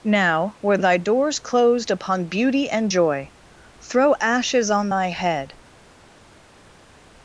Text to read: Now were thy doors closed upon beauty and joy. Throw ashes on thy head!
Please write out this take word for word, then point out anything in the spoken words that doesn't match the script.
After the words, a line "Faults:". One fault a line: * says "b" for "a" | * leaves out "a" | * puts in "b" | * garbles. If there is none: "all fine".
Now were thy doors closed upon beauty and joy. Throw ashes on thy head!
Faults:
all fine